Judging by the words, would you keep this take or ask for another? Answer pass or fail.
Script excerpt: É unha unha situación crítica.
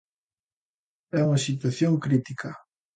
fail